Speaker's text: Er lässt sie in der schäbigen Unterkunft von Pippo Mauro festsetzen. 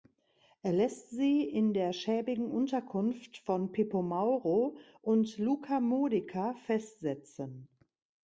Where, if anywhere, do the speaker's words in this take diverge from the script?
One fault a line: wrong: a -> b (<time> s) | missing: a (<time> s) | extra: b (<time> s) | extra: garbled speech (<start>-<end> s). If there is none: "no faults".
extra: und Luca Modica (5.0 s)